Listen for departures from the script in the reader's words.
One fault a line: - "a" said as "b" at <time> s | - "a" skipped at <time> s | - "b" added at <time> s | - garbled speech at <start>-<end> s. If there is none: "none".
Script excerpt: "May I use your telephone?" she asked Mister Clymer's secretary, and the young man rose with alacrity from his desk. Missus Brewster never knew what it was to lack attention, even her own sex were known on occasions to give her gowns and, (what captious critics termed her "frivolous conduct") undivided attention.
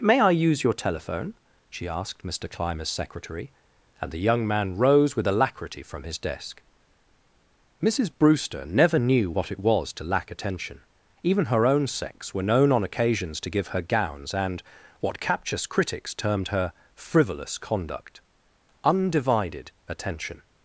none